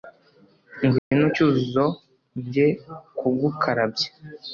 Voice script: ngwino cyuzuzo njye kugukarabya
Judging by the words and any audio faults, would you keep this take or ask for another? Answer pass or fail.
fail